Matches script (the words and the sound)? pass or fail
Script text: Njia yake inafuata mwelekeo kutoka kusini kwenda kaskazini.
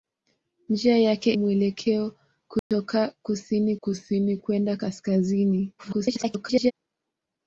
fail